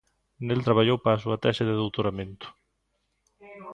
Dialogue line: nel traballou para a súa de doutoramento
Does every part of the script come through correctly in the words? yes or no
no